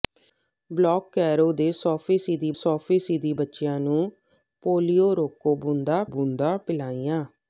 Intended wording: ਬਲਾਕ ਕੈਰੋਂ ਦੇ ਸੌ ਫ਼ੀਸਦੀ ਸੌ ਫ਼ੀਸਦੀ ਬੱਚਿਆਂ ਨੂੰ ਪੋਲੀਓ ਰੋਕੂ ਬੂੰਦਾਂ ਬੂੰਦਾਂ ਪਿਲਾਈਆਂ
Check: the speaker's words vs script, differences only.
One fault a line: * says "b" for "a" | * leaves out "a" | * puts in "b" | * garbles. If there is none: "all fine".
all fine